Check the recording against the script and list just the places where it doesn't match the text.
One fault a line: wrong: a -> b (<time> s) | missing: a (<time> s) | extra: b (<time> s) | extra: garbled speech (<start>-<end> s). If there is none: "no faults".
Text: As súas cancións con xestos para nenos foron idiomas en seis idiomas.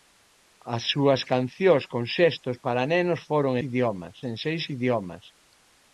no faults